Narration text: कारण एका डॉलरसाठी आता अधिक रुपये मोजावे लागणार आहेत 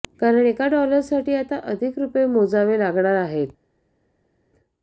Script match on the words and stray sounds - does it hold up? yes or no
yes